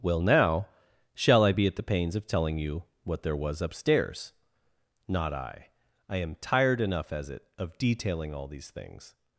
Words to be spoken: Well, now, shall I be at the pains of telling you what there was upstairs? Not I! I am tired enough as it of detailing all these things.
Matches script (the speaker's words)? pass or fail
pass